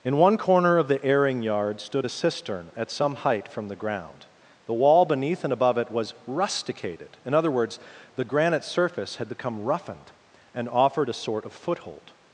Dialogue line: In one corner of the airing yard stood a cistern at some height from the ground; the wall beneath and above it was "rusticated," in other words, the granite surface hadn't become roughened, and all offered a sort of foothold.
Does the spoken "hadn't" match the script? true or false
false